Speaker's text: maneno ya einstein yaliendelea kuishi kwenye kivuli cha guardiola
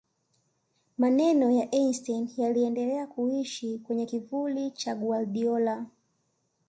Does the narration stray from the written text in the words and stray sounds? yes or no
no